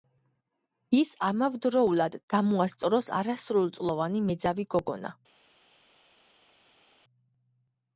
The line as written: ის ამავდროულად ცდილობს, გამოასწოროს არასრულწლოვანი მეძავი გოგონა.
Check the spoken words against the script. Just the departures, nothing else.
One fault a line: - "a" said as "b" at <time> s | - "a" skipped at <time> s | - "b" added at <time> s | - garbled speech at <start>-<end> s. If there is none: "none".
- "ცდილობს" skipped at 2.2 s